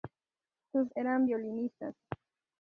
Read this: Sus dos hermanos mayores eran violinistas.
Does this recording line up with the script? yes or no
no